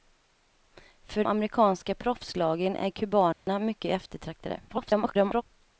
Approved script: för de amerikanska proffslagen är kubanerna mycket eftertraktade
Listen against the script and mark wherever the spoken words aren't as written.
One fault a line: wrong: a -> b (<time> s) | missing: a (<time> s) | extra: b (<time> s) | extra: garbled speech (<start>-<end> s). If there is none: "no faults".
missing: de (1.2 s)
extra: garbled speech (4.7-5.4 s)